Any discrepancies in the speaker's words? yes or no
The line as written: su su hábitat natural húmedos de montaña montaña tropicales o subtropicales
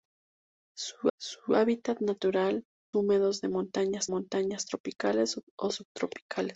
no